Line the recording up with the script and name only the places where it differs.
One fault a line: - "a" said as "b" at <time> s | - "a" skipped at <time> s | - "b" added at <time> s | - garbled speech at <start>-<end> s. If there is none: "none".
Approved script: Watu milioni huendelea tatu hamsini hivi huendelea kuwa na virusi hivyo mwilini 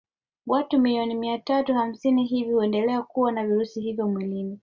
- "huendelea" said as "mia" at 1.1 s